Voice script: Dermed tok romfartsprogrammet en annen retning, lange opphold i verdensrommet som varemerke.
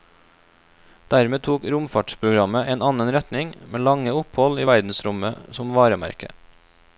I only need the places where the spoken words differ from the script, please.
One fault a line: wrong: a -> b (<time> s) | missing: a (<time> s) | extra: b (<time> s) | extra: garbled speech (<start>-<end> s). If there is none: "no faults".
extra: med (3.8 s)